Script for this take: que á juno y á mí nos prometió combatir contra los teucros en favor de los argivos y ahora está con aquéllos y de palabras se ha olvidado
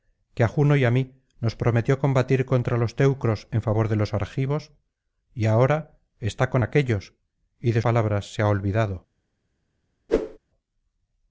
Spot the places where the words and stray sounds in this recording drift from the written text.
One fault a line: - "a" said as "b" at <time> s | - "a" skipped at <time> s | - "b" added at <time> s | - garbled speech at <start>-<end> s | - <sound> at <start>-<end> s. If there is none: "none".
- whoosh at 10.1-10.4 s